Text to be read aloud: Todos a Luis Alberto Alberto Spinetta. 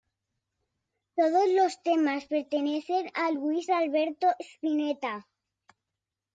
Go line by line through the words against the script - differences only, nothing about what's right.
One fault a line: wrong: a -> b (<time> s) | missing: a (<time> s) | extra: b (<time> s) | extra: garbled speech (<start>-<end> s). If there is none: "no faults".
extra: los temas pertenecen (1.5 s)
missing: Alberto (4.3 s)